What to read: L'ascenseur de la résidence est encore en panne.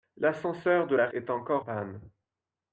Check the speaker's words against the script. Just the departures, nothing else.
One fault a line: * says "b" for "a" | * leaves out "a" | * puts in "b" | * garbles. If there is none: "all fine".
* leaves out "résidence"
* leaves out "en"